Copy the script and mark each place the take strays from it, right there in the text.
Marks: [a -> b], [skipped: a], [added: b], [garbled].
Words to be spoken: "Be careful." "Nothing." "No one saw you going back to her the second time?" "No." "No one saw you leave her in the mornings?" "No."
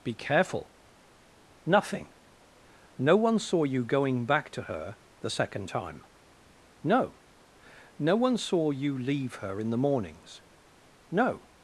"Be careful." "Nothing." "No one saw you going back to her the second time?" "No." "No one saw you leave her in the mornings?" "No."